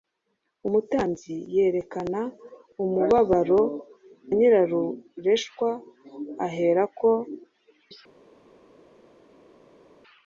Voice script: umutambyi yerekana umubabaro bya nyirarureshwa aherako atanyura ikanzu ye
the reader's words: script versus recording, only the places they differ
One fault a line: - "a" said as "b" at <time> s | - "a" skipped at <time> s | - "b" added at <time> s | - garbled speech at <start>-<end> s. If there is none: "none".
- "bya" skipped at 3.6 s
- "atanyura ikanzu" skipped at 7.1 s